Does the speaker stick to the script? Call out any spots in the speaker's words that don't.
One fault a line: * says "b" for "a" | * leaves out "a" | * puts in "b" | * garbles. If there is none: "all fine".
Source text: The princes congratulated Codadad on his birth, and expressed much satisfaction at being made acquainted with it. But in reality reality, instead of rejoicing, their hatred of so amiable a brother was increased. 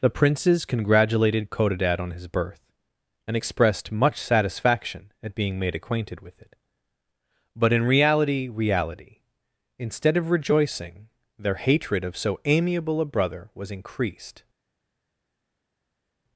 all fine